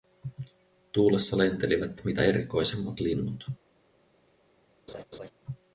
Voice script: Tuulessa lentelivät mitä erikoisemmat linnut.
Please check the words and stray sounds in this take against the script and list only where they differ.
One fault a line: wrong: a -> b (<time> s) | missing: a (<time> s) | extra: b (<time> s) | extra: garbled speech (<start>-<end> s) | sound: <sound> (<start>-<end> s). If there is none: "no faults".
sound: laugh (4.9-5.3 s)